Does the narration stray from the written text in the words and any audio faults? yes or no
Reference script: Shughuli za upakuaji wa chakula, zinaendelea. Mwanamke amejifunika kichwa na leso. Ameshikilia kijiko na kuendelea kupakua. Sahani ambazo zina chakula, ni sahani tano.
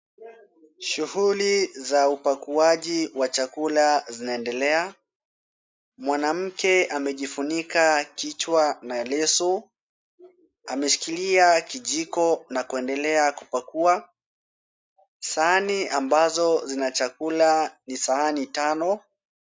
no